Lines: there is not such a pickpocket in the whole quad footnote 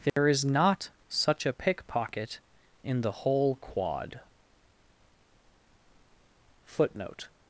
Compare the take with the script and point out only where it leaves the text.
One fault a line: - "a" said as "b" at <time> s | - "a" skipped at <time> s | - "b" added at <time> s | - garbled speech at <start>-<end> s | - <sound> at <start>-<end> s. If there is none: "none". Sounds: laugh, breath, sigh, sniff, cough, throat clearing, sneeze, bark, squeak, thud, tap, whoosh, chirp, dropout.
- dropout at 0.1-0.2 s